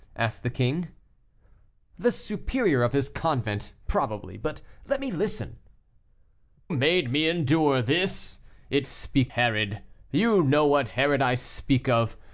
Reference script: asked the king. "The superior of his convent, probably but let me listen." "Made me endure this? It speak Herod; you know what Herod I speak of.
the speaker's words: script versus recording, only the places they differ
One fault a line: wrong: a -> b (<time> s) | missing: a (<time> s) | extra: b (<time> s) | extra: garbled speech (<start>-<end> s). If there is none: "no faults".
no faults